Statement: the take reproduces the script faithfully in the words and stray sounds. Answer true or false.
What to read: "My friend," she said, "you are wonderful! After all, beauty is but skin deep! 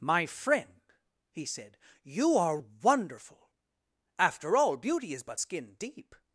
false